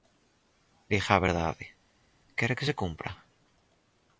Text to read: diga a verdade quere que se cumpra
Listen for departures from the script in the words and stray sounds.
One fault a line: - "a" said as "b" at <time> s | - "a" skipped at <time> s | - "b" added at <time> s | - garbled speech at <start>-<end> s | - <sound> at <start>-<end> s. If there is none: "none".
none